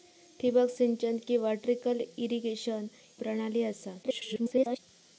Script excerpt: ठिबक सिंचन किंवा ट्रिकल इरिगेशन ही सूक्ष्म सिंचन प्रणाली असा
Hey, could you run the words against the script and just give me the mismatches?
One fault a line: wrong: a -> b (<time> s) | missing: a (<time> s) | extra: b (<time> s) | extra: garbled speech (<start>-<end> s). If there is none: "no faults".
missing: ही सूक्ष्म सिंचन (2.9 s)
extra: garbled speech (4.0-4.8 s)